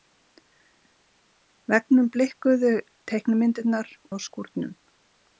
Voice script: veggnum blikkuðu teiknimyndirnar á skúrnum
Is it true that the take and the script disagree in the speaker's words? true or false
false